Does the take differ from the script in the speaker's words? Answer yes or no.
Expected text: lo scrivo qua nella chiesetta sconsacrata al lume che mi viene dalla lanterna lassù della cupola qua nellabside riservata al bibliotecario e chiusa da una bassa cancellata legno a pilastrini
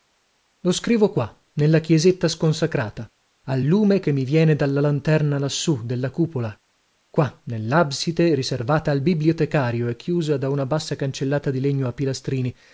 yes